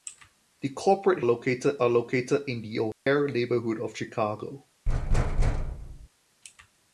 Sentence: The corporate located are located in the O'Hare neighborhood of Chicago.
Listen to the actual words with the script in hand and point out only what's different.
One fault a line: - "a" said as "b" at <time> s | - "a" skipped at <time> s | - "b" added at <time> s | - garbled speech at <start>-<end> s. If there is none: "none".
none